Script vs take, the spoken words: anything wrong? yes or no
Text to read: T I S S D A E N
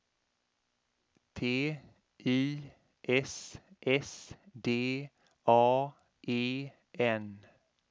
no